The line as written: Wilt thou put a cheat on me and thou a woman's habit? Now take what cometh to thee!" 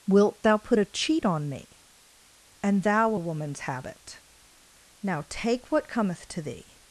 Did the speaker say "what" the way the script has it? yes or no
yes